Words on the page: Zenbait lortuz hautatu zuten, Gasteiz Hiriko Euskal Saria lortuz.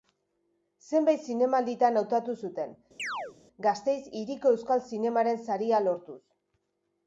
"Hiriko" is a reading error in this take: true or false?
false